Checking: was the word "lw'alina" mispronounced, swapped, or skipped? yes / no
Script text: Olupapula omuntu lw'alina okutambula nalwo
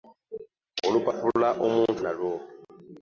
yes